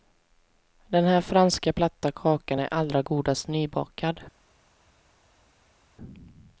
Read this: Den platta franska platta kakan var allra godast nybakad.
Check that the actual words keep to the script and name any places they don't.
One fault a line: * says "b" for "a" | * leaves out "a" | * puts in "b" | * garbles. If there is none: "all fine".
* says "här" for "platta"
* says "är" for "var"